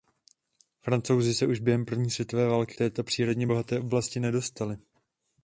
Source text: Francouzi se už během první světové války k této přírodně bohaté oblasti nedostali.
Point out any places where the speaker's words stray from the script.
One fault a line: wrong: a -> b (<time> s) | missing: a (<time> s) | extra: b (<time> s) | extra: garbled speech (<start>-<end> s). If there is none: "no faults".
missing: k (2.7 s)